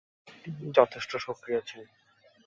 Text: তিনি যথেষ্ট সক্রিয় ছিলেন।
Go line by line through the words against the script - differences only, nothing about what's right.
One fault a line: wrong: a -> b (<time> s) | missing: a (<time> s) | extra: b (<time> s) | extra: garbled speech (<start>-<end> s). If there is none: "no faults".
no faults